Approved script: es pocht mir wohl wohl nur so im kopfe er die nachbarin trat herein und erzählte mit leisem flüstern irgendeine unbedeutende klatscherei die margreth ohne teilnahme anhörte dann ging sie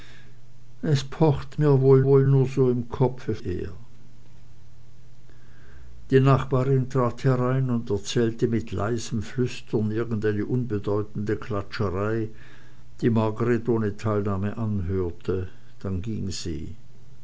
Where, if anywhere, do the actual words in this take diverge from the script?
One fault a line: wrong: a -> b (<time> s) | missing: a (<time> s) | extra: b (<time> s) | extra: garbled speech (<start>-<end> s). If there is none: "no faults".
no faults